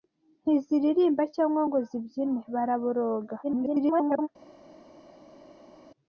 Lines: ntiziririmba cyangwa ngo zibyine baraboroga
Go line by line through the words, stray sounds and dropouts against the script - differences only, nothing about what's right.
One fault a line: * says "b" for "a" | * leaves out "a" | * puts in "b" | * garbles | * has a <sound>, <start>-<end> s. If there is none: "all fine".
* garbles